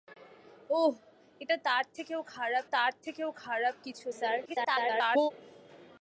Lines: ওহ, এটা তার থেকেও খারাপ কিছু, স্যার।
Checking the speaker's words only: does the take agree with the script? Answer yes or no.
no